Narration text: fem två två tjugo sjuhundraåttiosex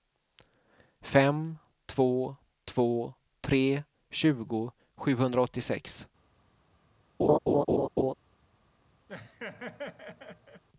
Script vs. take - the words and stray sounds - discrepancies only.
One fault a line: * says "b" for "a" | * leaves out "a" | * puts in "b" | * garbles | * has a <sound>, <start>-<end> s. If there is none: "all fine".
* puts in "tre"
* has a laugh, 7.2-8.1 s
* has a laugh, 9.1-10.6 s